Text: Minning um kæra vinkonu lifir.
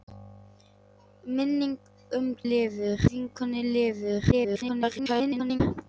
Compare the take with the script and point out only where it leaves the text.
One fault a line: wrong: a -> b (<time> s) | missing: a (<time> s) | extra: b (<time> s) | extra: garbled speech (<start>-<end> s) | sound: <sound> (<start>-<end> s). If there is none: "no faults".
wrong: kæra -> lifir (2.5 s)
extra: garbled speech (4.3-5.6 s)